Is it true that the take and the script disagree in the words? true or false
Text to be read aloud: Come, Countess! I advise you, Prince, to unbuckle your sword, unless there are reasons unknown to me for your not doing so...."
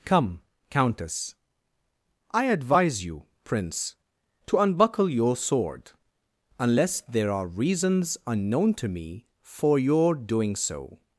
true